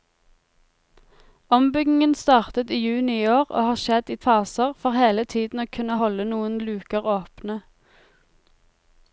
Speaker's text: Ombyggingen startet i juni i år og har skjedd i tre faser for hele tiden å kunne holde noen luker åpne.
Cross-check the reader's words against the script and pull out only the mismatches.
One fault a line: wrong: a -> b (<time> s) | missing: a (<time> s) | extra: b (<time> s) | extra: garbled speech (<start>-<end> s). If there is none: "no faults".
missing: tre (4.2 s)